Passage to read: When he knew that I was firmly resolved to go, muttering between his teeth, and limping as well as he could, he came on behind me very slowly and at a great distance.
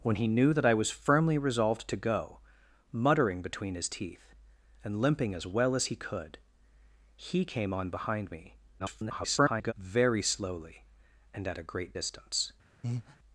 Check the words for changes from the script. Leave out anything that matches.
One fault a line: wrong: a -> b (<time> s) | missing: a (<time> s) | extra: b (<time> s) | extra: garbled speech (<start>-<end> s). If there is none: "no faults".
extra: garbled speech (8.8-9.7 s)